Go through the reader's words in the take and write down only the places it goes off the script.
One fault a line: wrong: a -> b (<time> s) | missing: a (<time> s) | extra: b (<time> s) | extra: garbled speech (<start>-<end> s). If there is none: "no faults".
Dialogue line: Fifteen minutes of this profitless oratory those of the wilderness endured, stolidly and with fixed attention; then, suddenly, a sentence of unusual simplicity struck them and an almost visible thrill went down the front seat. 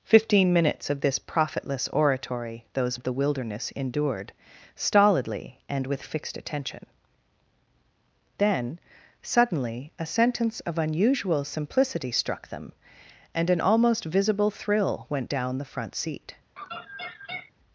no faults